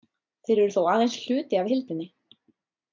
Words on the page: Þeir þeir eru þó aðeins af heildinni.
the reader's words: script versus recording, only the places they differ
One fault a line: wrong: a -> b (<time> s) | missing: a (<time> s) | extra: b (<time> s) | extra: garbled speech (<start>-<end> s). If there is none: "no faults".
missing: þeir (0.6 s)
extra: hluti (1.3 s)